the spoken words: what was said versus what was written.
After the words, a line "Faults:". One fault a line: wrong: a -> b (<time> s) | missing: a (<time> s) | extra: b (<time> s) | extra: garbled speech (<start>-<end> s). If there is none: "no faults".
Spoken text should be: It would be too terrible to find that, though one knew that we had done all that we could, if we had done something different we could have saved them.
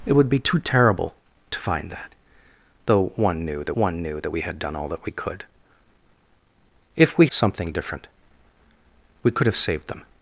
It would be too terrible to find that, though one knew that one knew that we had done all that we could, if we something different we could have saved them.
Faults:
extra: one knew that (3.7 s)
missing: had done (7.3 s)